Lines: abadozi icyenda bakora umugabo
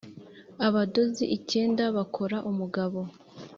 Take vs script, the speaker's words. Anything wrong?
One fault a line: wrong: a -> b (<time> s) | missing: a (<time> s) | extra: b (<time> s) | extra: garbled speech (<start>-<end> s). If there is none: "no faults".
no faults